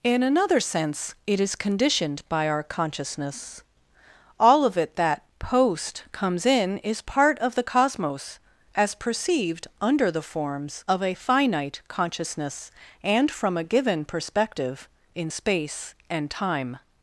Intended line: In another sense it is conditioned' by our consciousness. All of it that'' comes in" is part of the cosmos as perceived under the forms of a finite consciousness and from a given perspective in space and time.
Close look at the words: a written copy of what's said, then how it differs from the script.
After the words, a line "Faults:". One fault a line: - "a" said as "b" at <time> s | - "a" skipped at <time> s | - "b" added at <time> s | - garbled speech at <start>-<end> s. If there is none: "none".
In another sense it is conditioned' by our consciousness. All of it that'' post comes in" is part of the cosmos as perceived under the forms of a finite consciousness and from a given perspective in space and time.
Faults:
- "post" added at 5.4 s